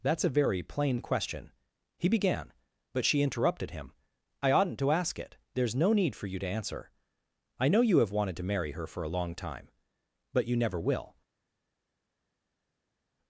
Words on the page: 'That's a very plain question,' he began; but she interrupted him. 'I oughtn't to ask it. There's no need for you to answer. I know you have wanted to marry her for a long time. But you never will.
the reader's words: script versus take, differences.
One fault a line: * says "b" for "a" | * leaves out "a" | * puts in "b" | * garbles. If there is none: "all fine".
all fine